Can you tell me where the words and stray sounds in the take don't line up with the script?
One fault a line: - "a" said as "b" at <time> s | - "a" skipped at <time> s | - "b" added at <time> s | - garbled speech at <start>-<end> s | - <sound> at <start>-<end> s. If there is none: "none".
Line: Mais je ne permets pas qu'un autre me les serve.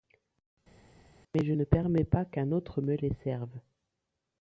none